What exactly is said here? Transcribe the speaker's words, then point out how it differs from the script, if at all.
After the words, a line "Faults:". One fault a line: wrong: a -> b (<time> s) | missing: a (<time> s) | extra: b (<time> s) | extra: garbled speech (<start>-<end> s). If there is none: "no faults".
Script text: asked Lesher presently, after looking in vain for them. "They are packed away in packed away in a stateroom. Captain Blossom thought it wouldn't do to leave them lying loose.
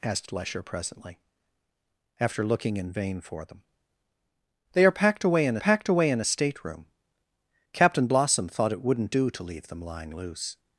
asked Lesher presently, after looking in vain for them. "They are packed away in packed away in a stateroom. Captain Blossom thought it wouldn't do to leave them lying loose.
Faults:
no faults